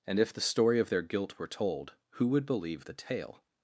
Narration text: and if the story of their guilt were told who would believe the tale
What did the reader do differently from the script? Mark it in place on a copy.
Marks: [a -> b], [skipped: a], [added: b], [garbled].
and if the story of their guilt were told who would believe the tale